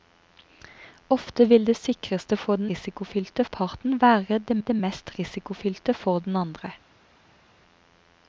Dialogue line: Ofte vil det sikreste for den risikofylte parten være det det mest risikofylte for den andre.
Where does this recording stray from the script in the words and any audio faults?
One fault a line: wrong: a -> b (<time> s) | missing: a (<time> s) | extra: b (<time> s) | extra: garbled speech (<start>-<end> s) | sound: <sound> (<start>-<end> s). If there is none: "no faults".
no faults